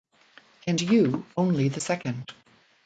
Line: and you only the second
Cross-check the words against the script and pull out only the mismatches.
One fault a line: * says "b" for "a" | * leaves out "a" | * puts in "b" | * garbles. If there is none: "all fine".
all fine